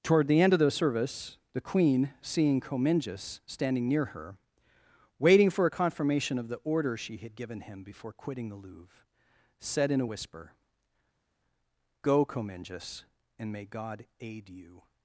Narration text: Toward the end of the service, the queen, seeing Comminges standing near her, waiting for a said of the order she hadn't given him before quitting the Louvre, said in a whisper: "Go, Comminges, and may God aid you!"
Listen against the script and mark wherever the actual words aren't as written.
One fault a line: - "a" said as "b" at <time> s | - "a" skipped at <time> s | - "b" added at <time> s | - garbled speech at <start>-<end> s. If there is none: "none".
- "said" said as "confirmation" at 5.7 s
- "hadn't" said as "had" at 7.2 s